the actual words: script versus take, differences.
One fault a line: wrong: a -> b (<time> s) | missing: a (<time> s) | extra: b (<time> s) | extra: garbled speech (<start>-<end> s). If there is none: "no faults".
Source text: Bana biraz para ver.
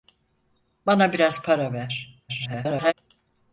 extra: garbled speech (2.3-2.9 s)